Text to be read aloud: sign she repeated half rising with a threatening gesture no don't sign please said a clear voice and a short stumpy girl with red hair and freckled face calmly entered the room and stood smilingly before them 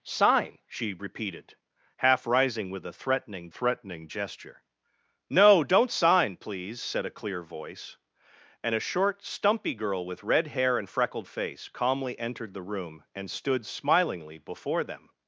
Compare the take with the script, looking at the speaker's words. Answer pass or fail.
fail